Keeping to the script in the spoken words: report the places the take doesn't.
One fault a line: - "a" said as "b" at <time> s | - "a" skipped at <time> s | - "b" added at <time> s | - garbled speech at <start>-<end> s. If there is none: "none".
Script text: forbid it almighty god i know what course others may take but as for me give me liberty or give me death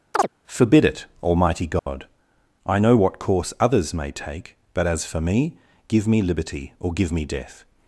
none